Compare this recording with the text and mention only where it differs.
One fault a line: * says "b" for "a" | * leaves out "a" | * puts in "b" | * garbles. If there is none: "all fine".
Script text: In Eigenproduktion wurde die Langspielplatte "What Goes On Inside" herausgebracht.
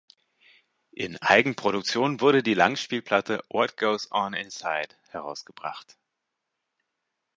all fine